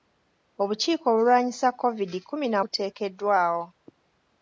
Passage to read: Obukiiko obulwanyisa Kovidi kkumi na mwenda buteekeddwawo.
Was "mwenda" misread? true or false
true